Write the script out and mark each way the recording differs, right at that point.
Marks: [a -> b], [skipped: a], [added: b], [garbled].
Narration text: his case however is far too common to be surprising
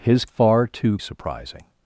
his [skipped: case however is] far too [skipped: common to be] surprising